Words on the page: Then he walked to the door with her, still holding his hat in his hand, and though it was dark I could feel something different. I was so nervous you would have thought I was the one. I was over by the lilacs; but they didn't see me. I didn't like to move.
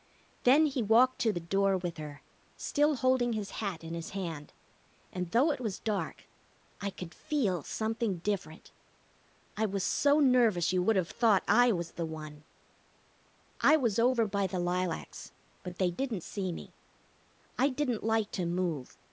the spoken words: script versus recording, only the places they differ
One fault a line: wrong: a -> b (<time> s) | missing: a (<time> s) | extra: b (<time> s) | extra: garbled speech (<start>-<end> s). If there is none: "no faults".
no faults